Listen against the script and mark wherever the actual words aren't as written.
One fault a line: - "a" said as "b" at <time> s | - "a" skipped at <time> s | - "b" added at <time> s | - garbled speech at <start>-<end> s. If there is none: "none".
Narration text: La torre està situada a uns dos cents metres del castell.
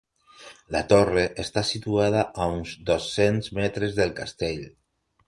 none